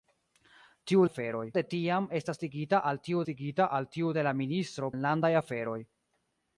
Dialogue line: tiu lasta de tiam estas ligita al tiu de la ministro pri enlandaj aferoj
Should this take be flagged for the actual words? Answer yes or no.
yes